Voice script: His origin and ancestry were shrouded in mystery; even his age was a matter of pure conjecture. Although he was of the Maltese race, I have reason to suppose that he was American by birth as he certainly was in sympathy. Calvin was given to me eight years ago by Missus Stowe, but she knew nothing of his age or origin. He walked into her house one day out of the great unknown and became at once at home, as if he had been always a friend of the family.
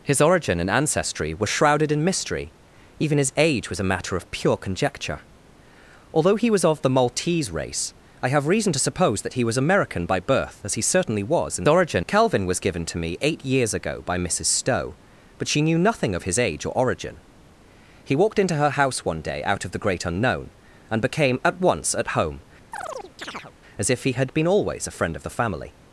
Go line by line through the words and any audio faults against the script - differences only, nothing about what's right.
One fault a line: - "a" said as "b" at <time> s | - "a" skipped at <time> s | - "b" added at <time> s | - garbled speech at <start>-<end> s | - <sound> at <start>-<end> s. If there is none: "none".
- "sympathy" said as "origin" at 11.7 s
- chirp at 22.7-23.5 s